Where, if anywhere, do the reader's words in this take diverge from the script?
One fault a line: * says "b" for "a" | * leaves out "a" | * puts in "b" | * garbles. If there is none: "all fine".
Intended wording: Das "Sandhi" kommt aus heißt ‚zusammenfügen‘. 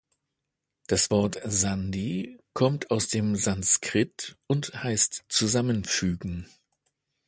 * puts in "Wort"
* puts in "dem Sanskrit und"